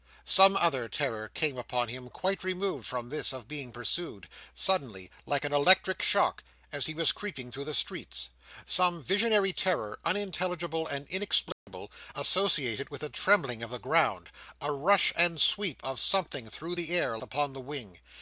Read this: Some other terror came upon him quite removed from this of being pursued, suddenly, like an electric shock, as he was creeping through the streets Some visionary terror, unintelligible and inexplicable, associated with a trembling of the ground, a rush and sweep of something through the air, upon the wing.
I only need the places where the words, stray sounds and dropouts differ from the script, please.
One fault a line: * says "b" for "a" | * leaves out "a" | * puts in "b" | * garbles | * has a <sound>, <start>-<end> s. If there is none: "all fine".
* has a dropout, 11.5-11.7 s